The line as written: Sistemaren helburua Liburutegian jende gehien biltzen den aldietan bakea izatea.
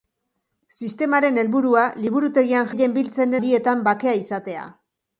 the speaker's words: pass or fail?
fail